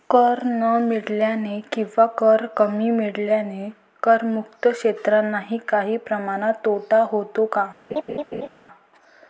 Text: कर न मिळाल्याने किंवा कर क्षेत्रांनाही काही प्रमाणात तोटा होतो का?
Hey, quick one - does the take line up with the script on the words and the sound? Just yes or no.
no